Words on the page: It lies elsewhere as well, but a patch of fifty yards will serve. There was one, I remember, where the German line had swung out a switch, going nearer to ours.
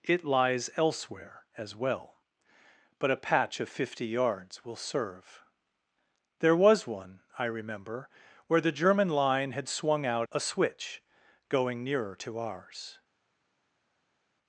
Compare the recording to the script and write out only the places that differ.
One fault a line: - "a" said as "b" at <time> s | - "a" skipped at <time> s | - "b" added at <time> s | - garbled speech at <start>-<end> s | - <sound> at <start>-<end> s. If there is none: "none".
none